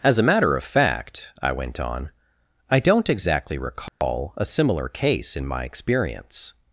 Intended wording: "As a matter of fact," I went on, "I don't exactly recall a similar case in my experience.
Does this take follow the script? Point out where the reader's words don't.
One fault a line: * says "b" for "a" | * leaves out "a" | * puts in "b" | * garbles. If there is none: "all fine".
all fine